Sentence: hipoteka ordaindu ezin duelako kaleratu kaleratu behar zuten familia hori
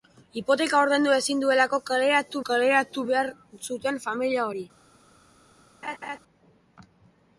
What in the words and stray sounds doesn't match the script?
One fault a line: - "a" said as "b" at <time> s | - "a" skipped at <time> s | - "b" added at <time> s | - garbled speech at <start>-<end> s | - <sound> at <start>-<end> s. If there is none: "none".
- laugh at 5.8-6.2 s